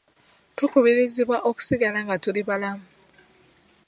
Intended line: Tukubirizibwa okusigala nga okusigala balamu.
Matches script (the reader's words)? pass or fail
fail